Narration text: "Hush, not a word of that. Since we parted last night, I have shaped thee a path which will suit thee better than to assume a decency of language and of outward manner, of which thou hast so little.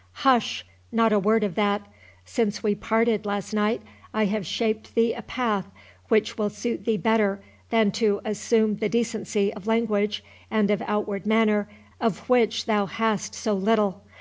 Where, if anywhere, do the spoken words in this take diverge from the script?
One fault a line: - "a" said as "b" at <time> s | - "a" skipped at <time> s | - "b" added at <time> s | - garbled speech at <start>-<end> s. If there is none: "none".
- "a" said as "the" at 8.7 s